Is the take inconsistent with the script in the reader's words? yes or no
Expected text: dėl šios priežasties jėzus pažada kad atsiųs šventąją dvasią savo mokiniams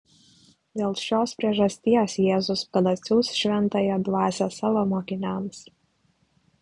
yes